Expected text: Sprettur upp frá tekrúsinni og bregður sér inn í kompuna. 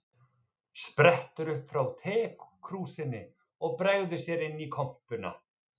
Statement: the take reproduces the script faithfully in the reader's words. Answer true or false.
true